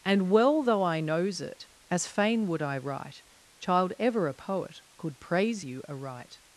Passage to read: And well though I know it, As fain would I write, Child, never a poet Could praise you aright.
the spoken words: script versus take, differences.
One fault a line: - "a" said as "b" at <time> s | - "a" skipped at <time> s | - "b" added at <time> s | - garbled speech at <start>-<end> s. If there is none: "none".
- "know" said as "knows" at 1.0 s
- "never" said as "ever" at 4.0 s